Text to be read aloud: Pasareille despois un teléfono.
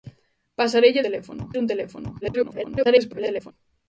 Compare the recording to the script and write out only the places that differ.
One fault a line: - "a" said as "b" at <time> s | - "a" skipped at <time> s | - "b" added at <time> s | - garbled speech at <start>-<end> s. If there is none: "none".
- "despois" said as "teléfono" at 1.0 s
- garbled speech at 2.2-3.5 s